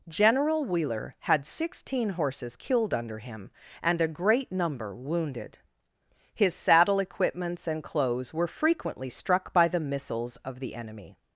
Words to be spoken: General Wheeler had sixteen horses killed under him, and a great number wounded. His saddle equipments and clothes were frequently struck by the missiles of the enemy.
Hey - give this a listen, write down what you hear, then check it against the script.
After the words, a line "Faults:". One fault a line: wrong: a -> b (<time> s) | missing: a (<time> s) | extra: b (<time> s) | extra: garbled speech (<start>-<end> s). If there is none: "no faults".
General Wheeler had sixteen horses killed under him, and a great number wounded. His saddle equipments and clothes were frequently struck by the missiles of the enemy.
Faults:
no faults